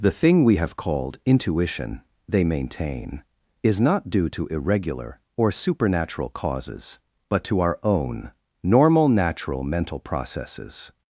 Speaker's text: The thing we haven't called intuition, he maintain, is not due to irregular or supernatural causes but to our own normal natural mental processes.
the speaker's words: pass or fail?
fail